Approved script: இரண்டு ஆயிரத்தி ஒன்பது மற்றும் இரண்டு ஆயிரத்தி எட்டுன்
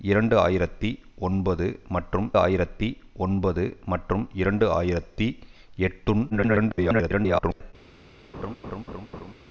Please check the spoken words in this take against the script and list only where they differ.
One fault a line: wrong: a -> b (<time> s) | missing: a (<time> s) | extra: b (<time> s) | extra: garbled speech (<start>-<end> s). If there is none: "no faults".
extra: ஆயிரத்தி ஒன்பது மற்றும் (2.4 s)
extra: garbled speech (6.3-7.7 s)